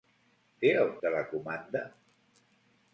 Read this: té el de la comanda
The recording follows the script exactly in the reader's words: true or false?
true